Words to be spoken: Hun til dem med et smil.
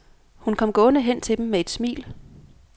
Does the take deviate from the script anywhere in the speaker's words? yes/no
yes